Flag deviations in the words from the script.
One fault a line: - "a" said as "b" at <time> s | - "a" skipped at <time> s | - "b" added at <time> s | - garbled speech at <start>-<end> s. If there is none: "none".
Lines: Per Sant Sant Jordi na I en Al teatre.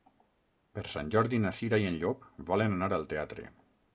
- "Sant" skipped at 1.1 s
- "Cira" added at 1.6 s
- "Llop volen anar" added at 2.0 s